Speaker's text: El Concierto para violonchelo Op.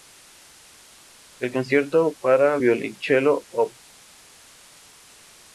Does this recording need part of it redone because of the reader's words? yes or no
no